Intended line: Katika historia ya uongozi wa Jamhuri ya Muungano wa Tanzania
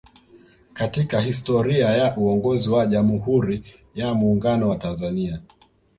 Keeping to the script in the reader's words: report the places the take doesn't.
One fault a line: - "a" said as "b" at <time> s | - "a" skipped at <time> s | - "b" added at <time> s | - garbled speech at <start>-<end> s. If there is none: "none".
none